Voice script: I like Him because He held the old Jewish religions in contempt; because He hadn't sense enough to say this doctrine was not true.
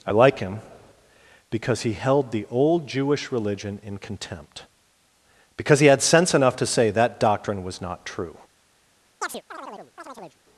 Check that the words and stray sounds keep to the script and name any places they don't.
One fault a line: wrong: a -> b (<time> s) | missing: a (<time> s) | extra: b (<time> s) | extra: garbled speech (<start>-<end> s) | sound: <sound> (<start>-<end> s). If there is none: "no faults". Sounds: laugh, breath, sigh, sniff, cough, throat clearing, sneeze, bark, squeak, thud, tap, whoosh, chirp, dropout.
wrong: religions -> religion (3.3 s)
wrong: hadn't -> had (5.9 s)
wrong: this -> that (6.9 s)
sound: chirp (9.2-10.4 s)